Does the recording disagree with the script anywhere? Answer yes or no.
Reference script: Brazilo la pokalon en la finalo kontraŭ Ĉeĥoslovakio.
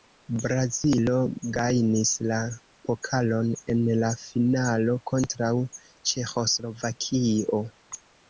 yes